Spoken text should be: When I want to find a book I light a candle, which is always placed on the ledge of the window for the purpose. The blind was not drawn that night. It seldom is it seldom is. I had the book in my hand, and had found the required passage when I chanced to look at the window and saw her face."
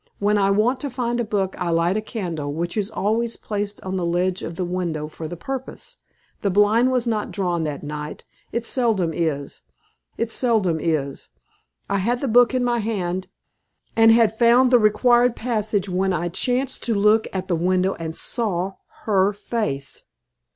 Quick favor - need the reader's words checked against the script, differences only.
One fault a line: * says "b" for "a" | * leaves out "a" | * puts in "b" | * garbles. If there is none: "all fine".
all fine